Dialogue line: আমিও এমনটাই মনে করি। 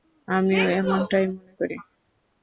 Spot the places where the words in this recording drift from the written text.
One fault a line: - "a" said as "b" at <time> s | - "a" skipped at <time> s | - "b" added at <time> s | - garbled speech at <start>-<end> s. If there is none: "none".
none